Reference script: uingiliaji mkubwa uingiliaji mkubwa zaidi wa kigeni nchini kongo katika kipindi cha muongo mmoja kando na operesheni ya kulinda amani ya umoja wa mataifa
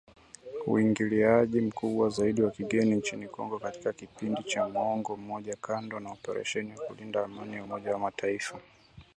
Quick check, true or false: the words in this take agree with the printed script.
false